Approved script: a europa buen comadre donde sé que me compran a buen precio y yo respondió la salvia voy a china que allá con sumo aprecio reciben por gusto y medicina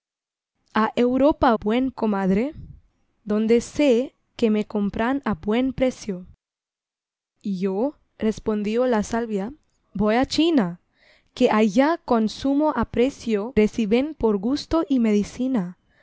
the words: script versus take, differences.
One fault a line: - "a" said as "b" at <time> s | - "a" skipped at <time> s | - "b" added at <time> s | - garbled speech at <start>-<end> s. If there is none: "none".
none